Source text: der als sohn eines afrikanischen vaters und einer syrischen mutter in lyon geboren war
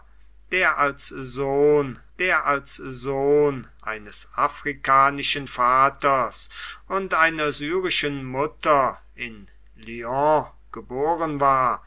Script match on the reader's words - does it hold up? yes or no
no